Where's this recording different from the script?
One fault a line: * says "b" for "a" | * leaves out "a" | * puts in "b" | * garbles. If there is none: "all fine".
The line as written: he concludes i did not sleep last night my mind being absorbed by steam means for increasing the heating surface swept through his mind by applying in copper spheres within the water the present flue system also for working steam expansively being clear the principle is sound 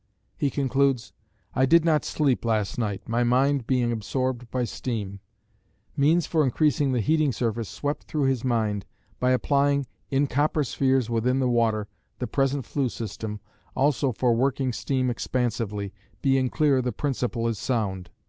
all fine